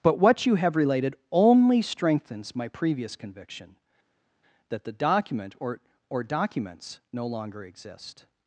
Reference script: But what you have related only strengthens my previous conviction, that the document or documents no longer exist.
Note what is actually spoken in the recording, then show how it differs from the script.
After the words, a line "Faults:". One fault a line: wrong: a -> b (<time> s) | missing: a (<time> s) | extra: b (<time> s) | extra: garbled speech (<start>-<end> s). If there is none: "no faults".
But what you have related only strengthens my previous conviction, that the document or or documents no longer exist.
Faults:
extra: or (6.1 s)